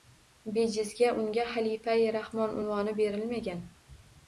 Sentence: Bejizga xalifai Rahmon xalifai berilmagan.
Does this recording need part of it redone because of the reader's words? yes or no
yes